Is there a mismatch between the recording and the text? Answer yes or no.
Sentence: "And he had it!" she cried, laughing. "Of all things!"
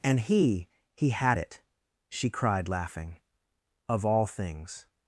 yes